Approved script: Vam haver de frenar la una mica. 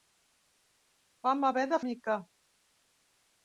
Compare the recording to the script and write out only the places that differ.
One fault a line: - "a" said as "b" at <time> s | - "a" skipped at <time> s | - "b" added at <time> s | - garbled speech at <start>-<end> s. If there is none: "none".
- "frenar la una" skipped at 1.8 s